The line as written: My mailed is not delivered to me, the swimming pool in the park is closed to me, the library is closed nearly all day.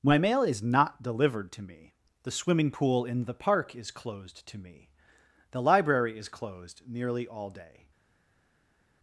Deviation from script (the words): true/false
true